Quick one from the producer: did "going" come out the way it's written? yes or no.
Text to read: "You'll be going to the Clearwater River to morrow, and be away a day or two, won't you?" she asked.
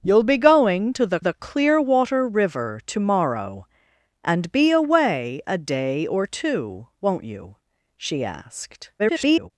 yes